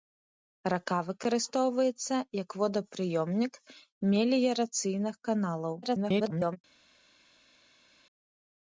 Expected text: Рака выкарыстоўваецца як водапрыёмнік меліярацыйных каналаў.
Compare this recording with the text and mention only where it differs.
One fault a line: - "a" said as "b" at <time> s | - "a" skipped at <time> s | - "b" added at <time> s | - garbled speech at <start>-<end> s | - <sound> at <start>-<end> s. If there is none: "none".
- garbled speech at 5.8-6.6 s